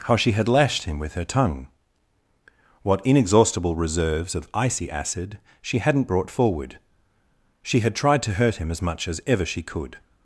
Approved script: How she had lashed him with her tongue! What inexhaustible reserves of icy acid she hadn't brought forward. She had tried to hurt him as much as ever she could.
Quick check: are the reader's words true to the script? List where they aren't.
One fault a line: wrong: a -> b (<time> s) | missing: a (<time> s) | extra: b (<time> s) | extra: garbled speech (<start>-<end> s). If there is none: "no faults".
no faults